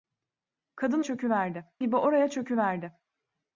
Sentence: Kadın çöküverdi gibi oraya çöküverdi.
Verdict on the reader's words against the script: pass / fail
pass